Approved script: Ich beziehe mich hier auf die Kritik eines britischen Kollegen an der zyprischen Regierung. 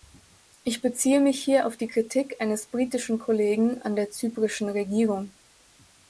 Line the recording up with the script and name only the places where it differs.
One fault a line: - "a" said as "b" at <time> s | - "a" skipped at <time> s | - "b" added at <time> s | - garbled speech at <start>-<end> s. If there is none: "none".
none